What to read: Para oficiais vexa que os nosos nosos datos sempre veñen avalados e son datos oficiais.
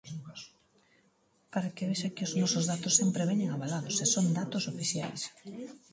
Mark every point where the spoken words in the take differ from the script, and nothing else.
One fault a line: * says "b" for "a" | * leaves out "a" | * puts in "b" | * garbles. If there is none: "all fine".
* says "que" for "oficiais"
* leaves out "nosos"